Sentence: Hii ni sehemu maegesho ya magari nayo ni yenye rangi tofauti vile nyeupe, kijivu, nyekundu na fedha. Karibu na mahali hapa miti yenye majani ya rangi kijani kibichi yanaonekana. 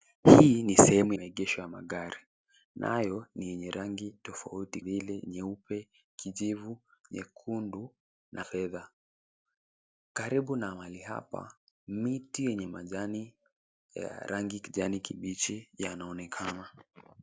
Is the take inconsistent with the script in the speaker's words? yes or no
no